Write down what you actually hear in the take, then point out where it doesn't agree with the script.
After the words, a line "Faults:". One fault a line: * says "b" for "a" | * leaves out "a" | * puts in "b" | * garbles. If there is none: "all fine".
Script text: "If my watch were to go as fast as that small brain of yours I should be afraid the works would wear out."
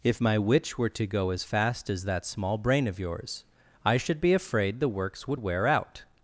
"If my witch were to go as fast as that small brain of yours I should be afraid the works would wear out."
Faults:
* says "witch" for "watch"